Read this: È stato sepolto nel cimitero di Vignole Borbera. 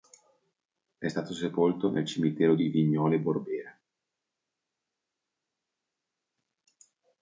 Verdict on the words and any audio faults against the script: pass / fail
pass